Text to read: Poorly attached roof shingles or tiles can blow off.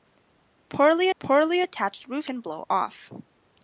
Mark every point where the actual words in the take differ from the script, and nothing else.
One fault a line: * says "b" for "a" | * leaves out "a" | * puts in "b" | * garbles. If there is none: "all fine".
* puts in "poorly"
* leaves out "shingles or tiles"